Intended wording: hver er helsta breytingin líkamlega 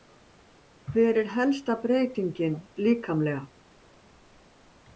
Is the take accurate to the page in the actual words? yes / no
yes